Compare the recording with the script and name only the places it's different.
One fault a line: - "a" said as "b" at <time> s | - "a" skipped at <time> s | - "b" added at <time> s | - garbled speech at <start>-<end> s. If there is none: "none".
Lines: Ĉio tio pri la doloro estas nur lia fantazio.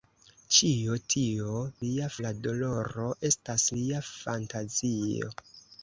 - "pri" said as "lia" at 1.9 s
- "nur" skipped at 3.7 s